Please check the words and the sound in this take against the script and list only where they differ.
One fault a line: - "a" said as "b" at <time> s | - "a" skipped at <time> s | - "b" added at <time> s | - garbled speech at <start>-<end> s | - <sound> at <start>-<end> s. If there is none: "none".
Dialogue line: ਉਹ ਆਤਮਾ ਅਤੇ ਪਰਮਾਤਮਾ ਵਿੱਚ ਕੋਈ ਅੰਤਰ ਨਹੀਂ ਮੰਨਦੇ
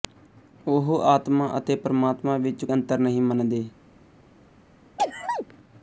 - "ਕੋਈ" skipped at 2.6 s
- sneeze at 5.0-5.5 s